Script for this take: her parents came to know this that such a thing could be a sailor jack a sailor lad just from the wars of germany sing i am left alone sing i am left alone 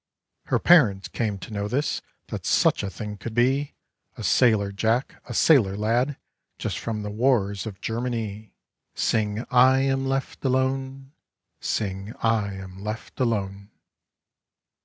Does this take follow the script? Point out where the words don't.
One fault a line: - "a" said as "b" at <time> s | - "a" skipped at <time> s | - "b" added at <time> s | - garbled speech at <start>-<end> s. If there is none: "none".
none